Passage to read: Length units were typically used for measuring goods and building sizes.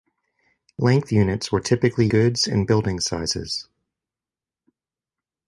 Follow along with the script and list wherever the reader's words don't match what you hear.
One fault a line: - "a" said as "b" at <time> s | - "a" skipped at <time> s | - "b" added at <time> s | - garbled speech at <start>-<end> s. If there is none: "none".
- "used for measuring" skipped at 2.1 s